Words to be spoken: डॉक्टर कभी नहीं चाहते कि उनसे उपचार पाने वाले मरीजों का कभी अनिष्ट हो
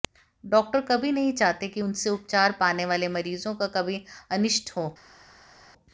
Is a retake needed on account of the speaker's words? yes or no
no